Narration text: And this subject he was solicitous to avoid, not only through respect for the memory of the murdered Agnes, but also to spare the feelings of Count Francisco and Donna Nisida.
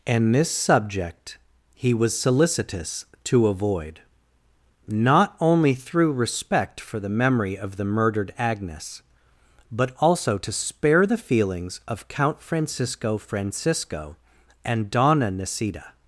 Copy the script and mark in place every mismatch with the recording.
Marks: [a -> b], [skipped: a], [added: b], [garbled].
And this subject he was solicitous to avoid, not only through respect for the memory of the murdered Agnes, but also to spare the feelings of Count Francisco [added: Francisco] and Donna Nisida.